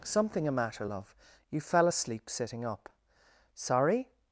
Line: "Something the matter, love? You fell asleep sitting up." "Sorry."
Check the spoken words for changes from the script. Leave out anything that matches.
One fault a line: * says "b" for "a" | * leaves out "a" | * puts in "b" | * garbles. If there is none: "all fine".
* says "a" for "the"